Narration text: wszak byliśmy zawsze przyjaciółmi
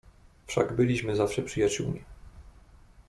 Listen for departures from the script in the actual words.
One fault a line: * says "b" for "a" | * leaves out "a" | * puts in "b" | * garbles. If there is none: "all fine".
all fine